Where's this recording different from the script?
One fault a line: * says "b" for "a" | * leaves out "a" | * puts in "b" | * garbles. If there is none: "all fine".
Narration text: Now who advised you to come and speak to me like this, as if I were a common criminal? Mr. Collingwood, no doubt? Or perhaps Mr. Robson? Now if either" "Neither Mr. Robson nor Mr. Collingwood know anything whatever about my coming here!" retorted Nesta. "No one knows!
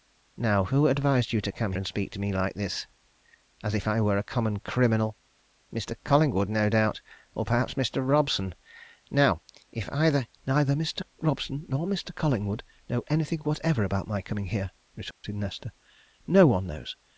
all fine